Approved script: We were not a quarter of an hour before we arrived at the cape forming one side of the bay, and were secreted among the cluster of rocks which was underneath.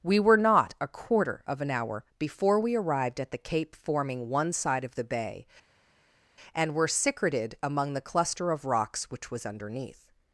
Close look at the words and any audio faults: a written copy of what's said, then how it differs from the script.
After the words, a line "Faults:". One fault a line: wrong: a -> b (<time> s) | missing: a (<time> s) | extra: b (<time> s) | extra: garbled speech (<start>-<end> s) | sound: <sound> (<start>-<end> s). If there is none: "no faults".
We were not a quarter of an hour before we arrived at the cape forming one side of the bay, and were secreted among the cluster of rocks which was underneath.
Faults:
no faults